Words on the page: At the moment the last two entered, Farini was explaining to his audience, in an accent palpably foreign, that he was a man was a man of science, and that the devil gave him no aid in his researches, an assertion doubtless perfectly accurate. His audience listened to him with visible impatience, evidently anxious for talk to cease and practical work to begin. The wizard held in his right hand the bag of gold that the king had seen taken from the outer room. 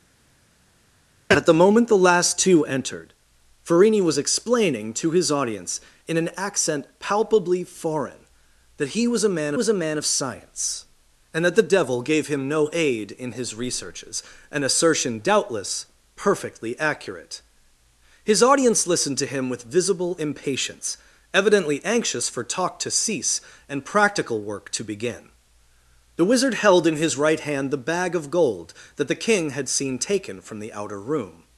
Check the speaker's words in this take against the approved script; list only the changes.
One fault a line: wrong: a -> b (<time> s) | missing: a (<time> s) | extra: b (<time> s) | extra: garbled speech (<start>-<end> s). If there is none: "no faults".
no faults